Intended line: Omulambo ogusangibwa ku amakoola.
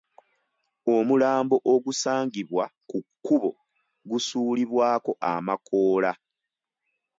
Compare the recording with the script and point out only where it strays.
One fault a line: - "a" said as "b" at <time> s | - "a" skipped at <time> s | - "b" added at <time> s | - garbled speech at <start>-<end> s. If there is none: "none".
- "kkubo gusuulibwako" added at 3.0 s